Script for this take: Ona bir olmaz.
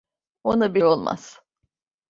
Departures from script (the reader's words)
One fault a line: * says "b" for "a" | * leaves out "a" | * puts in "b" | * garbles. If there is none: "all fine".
all fine